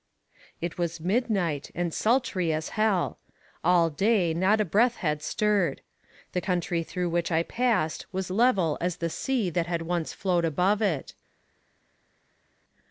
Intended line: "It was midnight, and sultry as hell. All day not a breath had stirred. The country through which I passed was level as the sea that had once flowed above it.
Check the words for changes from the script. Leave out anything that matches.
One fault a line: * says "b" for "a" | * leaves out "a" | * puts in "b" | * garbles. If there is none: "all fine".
all fine